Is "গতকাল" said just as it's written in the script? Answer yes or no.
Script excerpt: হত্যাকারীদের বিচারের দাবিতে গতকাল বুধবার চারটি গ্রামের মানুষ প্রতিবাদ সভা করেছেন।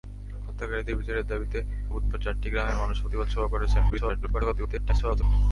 no